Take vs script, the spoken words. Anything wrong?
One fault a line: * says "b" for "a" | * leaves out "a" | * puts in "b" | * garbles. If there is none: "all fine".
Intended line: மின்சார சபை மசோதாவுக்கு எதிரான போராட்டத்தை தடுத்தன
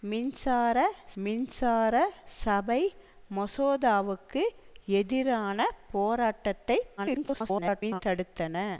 * puts in "மின்சார"
* garbles